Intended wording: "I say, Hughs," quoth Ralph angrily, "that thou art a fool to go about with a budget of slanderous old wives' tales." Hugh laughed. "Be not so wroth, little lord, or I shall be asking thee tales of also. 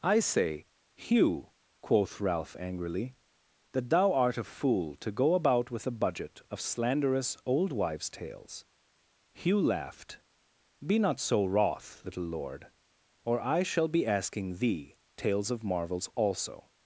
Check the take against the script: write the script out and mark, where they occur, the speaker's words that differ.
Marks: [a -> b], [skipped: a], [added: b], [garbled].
"I say, [Hughs," -> Hugh] quoth Ralph angrily, "that thou art a fool to go about with a budget of slanderous old wives' tales." Hugh laughed. "Be not so wroth, little lord, or I shall be asking thee tales of [added: marvels] also.